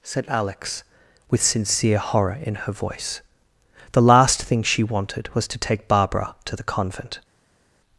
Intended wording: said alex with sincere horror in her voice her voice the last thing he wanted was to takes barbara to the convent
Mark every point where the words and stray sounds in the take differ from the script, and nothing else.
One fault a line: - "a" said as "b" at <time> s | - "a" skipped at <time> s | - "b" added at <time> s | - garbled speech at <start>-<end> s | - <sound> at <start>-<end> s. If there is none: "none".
- "her voice" skipped at 3.2 s
- "he" said as "she" at 4.6 s
- "takes" said as "take" at 5.6 s